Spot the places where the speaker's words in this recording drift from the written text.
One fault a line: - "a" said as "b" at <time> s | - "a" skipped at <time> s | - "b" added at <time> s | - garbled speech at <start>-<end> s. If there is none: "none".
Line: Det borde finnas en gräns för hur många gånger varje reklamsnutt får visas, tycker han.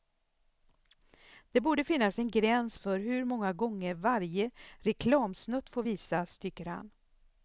none